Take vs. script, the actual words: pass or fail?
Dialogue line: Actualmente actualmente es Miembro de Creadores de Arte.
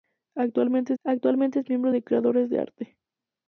pass